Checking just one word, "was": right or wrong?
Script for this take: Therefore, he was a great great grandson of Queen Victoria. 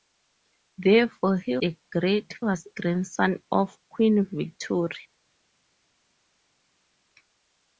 wrong